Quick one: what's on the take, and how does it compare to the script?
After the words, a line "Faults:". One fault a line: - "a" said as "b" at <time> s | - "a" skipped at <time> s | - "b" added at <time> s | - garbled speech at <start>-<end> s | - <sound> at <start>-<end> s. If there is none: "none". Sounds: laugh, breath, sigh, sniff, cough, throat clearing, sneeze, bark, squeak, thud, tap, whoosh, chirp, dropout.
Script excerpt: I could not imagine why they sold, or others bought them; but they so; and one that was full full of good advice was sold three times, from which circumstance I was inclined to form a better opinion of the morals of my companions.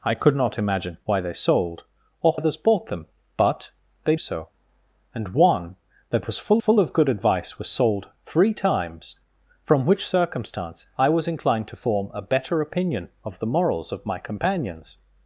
I could not imagine why they sold, or others bought them; but they so; and one that was full full of good advice was sold three times, from which circumstance I was inclined to form a better opinion of the morals of my companions.
Faults:
none